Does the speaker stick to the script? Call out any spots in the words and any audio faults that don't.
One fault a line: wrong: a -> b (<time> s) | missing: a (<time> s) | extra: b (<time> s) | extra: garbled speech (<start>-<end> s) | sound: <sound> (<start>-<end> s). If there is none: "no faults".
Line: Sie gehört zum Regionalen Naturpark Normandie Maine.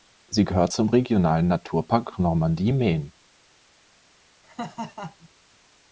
sound: laugh (4.4-5.3 s)